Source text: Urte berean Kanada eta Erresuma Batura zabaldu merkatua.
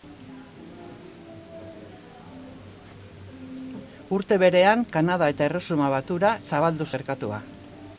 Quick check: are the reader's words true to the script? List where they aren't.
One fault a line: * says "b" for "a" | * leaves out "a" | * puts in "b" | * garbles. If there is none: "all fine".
all fine